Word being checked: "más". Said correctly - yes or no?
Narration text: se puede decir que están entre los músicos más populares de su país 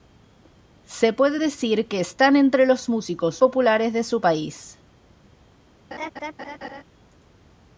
no